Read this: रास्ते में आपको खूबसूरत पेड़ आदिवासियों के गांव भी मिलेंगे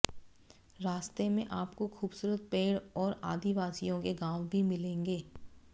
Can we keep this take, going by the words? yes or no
no